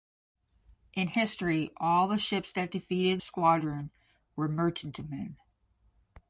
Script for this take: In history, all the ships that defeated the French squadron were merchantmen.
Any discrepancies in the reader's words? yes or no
yes